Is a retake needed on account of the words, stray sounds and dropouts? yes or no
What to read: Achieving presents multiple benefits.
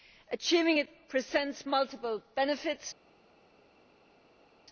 yes